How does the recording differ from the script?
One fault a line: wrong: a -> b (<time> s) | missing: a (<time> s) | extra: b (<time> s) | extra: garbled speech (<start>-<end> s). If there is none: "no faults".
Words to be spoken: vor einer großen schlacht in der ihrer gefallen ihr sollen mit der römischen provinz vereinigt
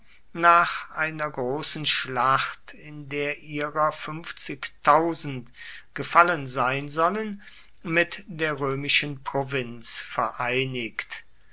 wrong: vor -> nach (0.3 s)
wrong: ihr -> sein (6.5 s)